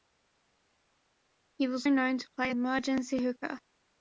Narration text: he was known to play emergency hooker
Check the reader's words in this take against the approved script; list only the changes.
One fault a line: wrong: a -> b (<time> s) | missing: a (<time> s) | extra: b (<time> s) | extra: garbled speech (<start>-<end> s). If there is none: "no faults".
no faults